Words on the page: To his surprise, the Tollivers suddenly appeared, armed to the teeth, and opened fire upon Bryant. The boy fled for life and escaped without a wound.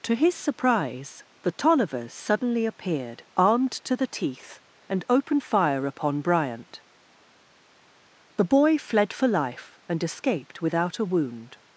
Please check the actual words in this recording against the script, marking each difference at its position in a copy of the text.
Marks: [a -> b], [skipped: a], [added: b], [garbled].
To his surprise, the Tollivers suddenly appeared, armed to the teeth, and opened fire upon Bryant. The boy fled for life and escaped without a wound.